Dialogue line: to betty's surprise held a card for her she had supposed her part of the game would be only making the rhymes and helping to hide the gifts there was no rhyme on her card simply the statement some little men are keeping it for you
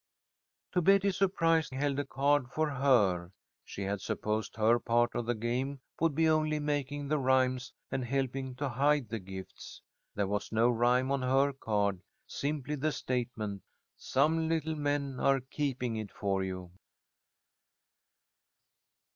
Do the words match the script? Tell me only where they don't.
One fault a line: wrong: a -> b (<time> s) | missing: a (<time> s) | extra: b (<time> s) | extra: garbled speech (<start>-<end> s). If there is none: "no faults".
no faults